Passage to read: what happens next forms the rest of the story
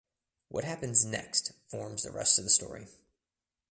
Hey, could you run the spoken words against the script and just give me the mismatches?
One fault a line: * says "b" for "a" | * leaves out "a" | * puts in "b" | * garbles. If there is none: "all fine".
all fine